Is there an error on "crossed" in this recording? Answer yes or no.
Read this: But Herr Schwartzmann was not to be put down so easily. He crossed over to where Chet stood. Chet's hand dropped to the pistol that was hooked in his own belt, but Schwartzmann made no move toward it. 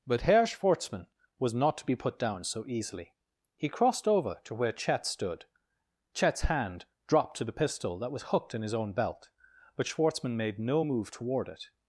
no